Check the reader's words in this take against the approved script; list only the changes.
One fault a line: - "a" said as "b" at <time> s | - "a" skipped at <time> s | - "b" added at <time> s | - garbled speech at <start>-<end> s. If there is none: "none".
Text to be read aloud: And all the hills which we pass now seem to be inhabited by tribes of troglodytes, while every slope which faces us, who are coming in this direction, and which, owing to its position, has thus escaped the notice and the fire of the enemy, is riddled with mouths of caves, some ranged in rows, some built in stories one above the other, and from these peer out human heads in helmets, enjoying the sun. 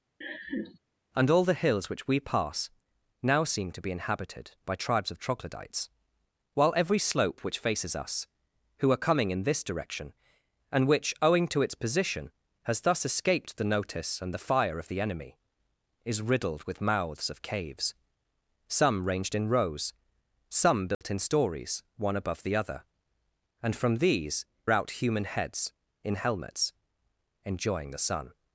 - "peer" skipped at 24.4 s